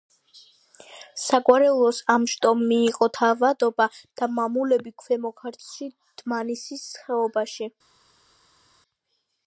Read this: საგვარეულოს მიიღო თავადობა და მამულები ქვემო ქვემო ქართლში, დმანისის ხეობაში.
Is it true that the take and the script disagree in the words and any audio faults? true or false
true